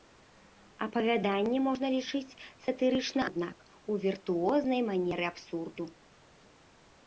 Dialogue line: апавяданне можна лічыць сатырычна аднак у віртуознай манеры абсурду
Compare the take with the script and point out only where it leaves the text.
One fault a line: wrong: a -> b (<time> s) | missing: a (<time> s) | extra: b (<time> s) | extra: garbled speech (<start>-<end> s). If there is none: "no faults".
no faults